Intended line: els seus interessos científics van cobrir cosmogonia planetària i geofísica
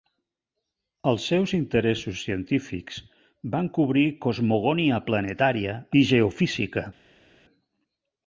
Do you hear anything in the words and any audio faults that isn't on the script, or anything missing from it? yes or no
no